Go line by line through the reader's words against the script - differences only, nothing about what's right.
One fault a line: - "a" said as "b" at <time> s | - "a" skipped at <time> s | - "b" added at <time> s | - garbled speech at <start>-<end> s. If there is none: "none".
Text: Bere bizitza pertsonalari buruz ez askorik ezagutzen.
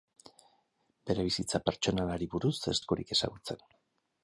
none